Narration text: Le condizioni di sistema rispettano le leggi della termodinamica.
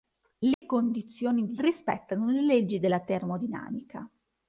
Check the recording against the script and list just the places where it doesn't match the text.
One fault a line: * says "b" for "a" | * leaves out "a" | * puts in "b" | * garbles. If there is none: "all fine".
* leaves out "sistema"